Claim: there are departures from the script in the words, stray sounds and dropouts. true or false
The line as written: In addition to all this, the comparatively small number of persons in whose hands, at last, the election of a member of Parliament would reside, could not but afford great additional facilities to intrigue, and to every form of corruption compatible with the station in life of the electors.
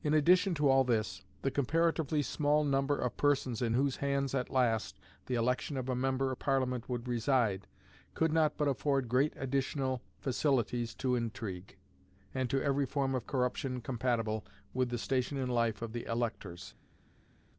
false